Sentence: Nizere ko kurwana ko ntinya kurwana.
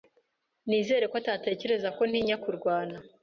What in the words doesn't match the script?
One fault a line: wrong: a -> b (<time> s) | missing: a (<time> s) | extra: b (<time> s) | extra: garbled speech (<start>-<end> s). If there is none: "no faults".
wrong: kurwana -> atatekereza (1.2 s)